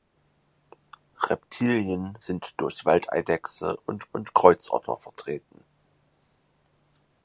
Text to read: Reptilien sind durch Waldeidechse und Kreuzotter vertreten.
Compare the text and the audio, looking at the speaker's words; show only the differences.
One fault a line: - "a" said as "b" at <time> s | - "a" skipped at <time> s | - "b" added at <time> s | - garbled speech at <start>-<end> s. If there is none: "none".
- "und" added at 4.1 s